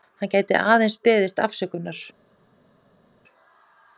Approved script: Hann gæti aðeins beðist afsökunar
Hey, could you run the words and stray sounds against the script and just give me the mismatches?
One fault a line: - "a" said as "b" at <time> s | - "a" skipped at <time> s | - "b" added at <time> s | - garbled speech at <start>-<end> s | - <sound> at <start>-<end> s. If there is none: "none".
none